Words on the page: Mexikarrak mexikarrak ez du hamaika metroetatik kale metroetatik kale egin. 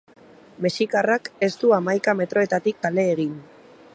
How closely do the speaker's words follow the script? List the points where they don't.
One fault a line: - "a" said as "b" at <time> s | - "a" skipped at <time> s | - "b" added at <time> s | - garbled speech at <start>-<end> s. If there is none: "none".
- "mexikarrak" skipped at 1.3 s
- "metroetatik kale" skipped at 3.1 s